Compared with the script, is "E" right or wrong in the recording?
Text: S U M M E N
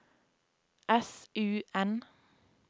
wrong